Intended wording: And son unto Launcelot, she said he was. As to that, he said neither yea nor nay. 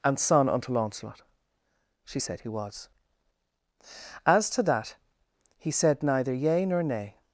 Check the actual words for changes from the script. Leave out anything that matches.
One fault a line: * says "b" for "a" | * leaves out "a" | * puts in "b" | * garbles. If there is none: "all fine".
all fine